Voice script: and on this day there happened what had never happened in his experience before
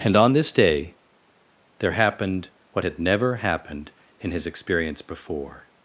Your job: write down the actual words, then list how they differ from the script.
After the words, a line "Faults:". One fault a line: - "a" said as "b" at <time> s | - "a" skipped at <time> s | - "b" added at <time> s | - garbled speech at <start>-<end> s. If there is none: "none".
and on this day there happened what had never happened in his experience before
Faults:
none